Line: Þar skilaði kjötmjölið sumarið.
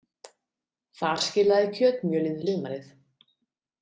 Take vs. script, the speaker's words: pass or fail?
pass